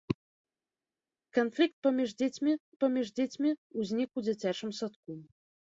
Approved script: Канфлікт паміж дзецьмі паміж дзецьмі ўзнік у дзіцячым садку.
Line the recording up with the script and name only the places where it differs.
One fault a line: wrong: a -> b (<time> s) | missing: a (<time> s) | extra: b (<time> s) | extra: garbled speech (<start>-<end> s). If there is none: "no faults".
no faults